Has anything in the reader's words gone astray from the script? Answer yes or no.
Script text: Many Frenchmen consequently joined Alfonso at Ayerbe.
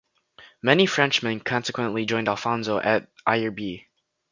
no